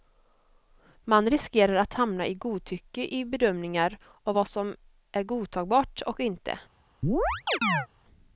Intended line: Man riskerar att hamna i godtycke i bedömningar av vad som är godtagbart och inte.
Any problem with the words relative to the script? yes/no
no